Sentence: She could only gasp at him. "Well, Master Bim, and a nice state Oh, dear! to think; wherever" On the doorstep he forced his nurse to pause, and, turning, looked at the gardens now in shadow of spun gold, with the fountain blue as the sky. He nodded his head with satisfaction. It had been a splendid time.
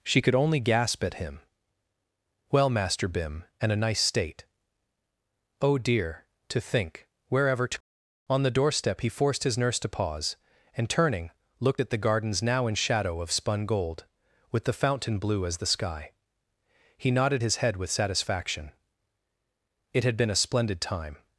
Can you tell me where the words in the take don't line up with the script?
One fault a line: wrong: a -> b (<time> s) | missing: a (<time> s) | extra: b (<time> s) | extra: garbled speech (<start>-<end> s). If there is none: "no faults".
extra: to (7.7 s)